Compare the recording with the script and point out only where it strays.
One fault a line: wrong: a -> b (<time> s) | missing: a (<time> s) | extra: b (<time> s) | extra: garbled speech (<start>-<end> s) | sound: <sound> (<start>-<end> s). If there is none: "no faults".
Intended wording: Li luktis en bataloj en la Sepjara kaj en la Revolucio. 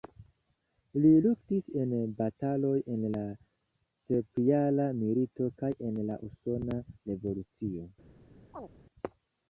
extra: milito (5.0 s)
extra: Usona (6.3 s)
sound: chirp (8.5-8.7 s)